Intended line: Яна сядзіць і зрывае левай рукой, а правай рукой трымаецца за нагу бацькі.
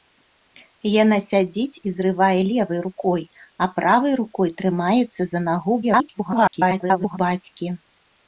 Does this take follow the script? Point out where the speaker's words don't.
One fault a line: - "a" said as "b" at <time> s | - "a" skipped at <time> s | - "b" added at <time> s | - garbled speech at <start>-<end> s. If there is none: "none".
- garbled speech at 5.8-7.2 s